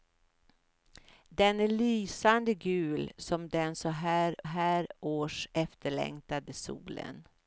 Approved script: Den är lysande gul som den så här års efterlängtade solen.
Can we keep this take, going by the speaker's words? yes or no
no